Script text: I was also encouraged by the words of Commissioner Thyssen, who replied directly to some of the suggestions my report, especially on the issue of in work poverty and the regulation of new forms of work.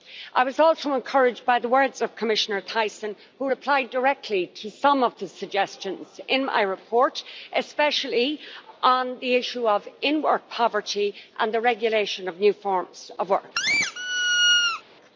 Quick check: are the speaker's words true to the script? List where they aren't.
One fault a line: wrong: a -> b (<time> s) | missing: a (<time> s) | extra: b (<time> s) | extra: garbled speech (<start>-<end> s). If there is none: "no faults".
extra: in (6.3 s)